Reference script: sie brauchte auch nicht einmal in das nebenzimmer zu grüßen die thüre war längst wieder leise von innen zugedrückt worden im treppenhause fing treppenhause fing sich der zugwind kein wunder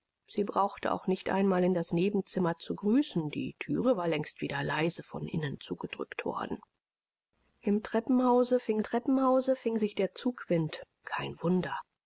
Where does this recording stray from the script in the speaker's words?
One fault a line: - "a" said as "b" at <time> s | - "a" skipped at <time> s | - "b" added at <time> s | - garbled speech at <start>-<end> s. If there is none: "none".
none